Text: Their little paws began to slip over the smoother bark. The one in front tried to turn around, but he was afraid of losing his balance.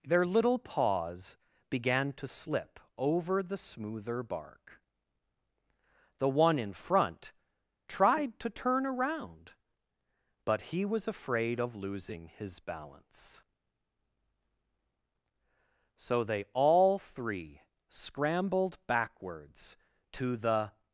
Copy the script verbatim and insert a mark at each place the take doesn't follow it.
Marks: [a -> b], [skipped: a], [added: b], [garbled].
Their little paws began to slip over the smoother bark. The one in front tried to turn around, but he was afraid of losing his balance. [added: So they all three scrambled backwards to the]